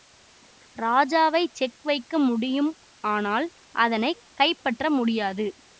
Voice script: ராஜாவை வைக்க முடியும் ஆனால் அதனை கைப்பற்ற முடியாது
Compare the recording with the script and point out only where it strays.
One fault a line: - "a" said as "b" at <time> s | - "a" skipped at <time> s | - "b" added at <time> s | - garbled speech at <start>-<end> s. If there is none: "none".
- "செக்" added at 1.5 s